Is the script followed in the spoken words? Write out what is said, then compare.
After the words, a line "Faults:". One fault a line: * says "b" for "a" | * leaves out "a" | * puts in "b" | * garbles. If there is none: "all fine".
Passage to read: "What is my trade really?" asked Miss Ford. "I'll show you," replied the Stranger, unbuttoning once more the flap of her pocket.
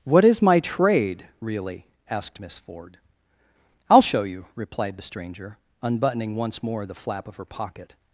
"What is my trade really?" asked Miss Ford. "I'll show you," replied the Stranger, unbuttoning once more the flap of her pocket.
Faults:
all fine